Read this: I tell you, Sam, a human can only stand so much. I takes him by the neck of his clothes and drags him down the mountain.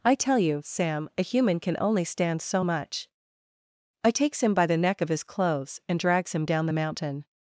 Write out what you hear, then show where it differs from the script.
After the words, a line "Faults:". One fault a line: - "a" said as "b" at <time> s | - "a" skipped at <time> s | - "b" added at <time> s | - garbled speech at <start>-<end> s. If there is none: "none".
I tell you, Sam, a human can only stand so much. I takes him by the neck of his clothes and drags him down the mountain.
Faults:
none